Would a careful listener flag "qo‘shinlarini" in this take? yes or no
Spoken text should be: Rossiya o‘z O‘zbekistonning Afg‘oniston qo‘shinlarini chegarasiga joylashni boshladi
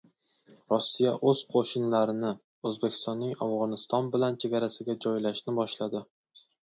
yes